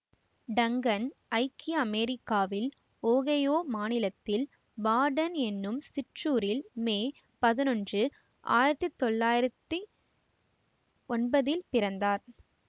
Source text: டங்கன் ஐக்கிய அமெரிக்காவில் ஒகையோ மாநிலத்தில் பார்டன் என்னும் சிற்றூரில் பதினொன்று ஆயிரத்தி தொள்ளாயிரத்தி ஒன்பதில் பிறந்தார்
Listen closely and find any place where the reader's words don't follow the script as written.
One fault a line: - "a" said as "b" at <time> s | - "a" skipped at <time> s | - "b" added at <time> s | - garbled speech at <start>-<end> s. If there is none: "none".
- "மே" added at 6.9 s